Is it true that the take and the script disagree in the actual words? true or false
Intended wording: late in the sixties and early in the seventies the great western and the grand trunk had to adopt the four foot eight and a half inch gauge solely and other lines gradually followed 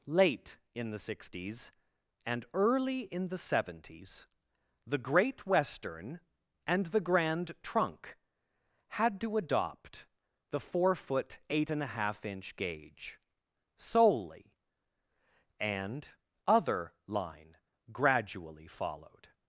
true